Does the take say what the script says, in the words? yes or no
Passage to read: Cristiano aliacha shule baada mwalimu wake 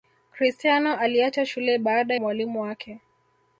yes